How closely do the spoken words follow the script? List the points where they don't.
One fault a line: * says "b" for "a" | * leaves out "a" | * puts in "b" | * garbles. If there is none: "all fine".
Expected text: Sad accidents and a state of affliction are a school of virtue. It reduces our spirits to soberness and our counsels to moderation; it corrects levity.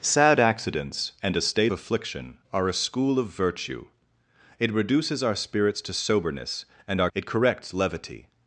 * leaves out "of"
* leaves out "counsels to moderation"